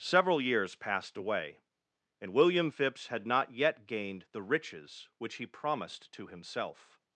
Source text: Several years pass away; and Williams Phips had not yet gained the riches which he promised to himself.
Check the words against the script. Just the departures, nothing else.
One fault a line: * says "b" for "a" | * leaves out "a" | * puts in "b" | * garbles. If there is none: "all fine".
* says "passed" for "pass"
* says "William" for "Williams"